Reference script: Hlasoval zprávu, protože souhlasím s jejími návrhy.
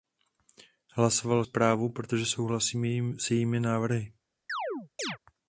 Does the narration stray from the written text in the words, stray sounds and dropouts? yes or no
yes